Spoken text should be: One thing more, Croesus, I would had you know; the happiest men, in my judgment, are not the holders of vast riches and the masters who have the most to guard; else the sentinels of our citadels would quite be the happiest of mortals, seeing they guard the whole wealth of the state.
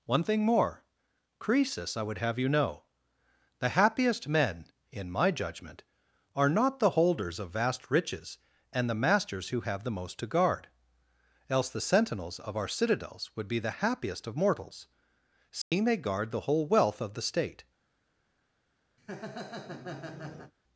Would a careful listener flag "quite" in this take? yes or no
yes